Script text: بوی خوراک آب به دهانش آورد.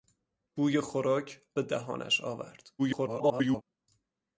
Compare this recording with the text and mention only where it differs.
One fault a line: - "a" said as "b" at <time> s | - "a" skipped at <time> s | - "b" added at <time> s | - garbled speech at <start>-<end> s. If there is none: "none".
- "آب" skipped at 1.4 s
- garbled speech at 2.8-3.6 s